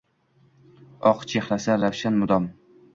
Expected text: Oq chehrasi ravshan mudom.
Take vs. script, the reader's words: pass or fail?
pass